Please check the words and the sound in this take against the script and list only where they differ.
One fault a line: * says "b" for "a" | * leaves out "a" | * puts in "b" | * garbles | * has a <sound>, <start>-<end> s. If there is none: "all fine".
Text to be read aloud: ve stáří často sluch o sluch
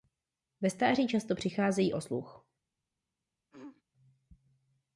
* says "přicházejí" for "sluch"
* has a throat clearing, 3.5-3.8 s